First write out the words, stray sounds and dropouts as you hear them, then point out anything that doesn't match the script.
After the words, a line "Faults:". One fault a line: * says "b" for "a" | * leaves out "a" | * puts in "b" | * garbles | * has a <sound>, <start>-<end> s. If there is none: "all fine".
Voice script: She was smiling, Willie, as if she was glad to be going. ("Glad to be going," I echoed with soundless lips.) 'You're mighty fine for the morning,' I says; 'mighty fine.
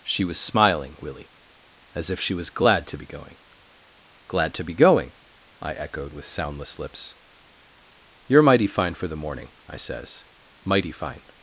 She was smiling, Willie, as if she was glad to be going. ("Glad to be going," I echoed with soundless lips.) 'You're mighty fine for the morning,' I says; 'mighty fine.
Faults:
all fine